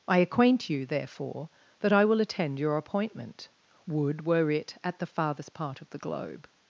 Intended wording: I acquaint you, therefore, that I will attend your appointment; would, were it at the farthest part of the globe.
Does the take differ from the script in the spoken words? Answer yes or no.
no